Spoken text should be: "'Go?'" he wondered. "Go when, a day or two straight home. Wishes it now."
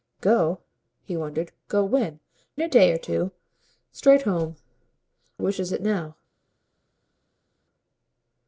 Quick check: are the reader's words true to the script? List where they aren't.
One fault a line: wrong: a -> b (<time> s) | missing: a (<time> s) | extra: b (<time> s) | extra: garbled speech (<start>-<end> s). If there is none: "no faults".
no faults